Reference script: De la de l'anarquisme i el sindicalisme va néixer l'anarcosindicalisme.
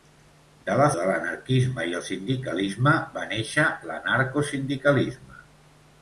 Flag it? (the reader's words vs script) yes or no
no